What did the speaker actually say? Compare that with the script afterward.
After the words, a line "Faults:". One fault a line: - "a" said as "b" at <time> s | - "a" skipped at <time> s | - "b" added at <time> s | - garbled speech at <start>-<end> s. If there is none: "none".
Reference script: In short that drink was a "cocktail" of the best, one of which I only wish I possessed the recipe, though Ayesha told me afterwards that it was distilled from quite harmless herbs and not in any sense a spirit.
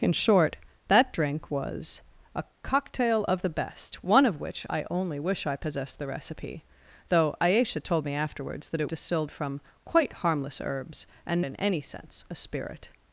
In short that drink was a "cocktail" of the best, one of which I only wish I possessed the recipe, though Ayesha told me afterwards that it distilled from quite harmless herbs and in any sense a spirit.
Faults:
- "was" skipped at 8.9 s
- "not" skipped at 11.4 s